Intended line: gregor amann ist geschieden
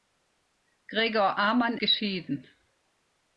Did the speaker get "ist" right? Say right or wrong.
wrong